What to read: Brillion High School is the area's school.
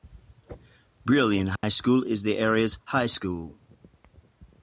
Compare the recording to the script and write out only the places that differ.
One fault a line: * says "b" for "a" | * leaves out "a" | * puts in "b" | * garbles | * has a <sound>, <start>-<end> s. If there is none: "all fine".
* has a dropout, 1.6-1.6 s
* puts in "high"